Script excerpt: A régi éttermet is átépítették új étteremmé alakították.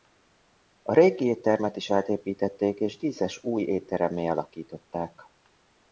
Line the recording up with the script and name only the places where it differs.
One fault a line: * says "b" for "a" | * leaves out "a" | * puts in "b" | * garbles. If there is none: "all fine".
* puts in "és díszes"